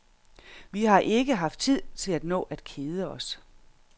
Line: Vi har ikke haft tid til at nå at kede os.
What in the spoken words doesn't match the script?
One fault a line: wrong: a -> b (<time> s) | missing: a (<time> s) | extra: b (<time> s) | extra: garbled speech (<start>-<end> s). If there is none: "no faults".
no faults